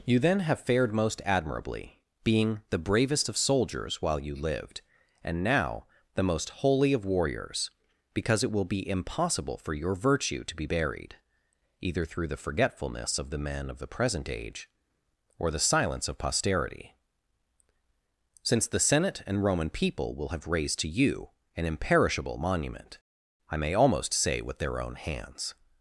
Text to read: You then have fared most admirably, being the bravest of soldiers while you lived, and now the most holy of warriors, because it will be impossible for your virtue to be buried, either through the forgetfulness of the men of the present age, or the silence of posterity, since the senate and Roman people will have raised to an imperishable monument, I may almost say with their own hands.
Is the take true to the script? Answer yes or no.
no